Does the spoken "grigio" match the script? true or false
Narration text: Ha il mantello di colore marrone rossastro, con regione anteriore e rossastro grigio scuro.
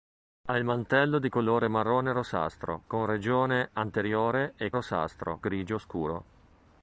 true